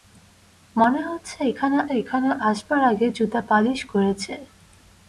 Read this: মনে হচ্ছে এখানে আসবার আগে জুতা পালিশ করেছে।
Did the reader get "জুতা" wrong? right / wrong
right